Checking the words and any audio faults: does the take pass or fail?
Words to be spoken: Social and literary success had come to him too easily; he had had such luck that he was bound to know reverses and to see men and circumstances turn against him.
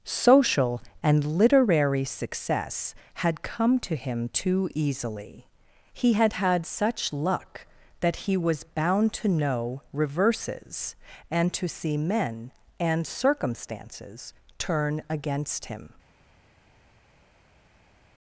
pass